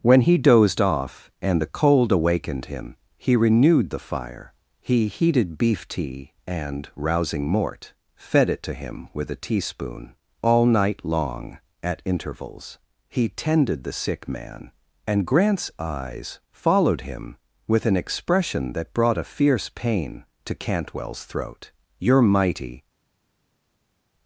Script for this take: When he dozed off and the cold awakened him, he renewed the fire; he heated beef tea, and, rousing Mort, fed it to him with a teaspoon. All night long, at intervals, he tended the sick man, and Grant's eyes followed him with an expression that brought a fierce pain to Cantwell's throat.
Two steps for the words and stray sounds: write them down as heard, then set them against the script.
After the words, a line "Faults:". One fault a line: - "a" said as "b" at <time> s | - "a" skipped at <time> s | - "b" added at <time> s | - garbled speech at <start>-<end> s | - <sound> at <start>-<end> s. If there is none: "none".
When he dozed off and the cold awakened him, he renewed the fire; he heated beef tea, and, rousing Mort, fed it to him with a teaspoon. All night long, at intervals, he tended the sick man, and Grant's eyes followed him with an expression that brought a fierce pain to Cantwell's throat. "You're mighty
Faults:
- "You're mighty" added at 22.0 s